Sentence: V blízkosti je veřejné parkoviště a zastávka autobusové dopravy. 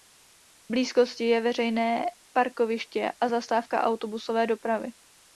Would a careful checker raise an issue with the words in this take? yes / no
no